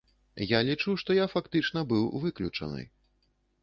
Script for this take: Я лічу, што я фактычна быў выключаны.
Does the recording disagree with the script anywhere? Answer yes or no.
no